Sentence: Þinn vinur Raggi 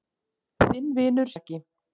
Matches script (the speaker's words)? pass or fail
pass